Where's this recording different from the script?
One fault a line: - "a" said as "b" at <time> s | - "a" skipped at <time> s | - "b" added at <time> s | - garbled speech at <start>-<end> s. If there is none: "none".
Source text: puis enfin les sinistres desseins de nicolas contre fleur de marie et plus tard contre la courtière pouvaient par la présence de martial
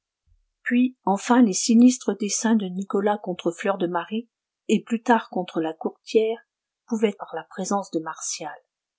none